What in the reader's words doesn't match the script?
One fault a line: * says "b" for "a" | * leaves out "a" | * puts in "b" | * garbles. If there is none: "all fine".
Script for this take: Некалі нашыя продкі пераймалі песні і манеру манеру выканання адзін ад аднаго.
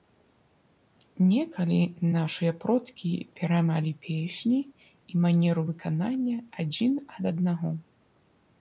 * leaves out "манеру"